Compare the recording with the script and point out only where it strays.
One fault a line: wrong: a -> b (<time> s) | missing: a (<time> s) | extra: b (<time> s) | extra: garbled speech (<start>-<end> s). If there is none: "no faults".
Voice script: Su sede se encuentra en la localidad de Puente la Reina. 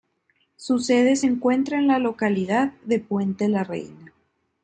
no faults